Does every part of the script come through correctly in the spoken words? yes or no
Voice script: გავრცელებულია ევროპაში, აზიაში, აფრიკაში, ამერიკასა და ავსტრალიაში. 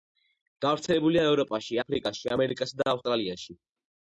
no